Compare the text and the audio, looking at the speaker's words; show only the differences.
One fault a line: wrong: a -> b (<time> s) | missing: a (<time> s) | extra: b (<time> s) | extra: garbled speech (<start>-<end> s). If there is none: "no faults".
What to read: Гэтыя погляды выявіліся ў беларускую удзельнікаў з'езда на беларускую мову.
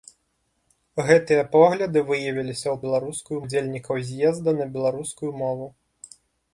no faults